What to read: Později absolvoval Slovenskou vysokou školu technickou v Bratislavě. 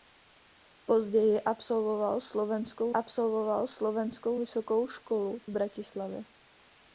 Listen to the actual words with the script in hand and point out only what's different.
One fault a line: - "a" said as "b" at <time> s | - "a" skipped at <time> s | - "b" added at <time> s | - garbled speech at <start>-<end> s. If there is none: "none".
- "absolvoval Slovenskou" added at 2.9 s
- "technickou" skipped at 5.4 s